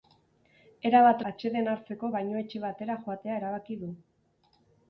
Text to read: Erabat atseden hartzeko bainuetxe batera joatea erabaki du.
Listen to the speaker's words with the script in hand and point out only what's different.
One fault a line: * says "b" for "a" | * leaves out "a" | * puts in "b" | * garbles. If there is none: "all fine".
all fine